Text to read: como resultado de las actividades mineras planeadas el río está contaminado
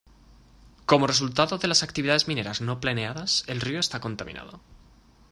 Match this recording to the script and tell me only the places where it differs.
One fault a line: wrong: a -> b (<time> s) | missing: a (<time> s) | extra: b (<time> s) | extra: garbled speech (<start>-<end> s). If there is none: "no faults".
extra: no (2.6 s)